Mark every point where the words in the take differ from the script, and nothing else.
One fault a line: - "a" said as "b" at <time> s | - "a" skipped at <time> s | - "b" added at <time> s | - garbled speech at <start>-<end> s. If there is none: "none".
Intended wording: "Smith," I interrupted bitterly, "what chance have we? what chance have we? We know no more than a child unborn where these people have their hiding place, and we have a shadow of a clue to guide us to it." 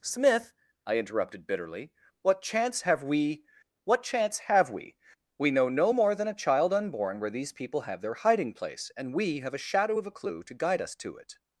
none